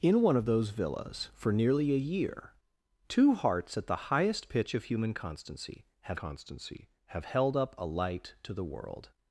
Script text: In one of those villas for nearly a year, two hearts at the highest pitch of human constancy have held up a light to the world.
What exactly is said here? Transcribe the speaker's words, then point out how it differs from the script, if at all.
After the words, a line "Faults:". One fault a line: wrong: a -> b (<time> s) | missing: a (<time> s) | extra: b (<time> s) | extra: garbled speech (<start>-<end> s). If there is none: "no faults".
In one of those villas for nearly a year, two hearts at the highest pitch of human constancy have constancy have held up a light to the world.
Faults:
extra: constancy have (6.1 s)